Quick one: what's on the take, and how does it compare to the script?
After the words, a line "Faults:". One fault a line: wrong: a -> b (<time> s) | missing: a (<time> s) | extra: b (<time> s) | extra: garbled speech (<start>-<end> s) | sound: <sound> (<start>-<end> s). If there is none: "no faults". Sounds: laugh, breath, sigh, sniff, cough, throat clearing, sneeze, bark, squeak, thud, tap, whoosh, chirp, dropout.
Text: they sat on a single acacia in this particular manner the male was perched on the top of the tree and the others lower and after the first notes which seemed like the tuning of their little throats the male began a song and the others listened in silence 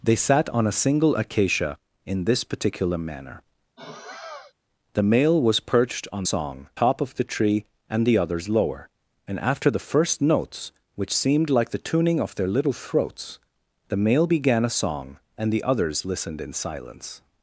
they sat on a single acacia in this particular manner the male was perched on song top of the tree and the others lower and after the first notes which seemed like the tuning of their little throats the male began a song and the others listened in silence
Faults:
sound: sigh (3.8-4.5 s)
wrong: the -> song (6.3 s)